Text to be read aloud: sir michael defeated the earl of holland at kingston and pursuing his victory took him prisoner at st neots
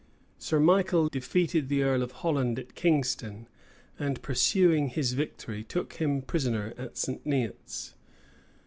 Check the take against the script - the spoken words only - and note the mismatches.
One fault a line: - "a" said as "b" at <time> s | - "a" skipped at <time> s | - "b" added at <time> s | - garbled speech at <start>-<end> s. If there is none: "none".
none